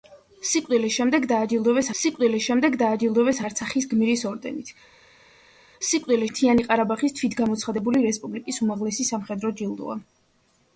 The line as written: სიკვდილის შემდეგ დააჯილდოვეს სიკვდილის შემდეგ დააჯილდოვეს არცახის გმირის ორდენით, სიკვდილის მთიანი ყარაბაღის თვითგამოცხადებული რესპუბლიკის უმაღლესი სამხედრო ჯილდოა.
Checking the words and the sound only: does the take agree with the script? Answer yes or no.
yes